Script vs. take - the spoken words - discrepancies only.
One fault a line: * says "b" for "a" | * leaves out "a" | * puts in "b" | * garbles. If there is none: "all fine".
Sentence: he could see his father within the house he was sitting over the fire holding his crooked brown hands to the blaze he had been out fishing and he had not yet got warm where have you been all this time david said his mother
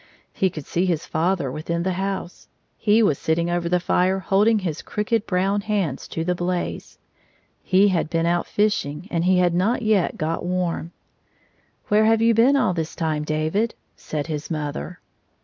all fine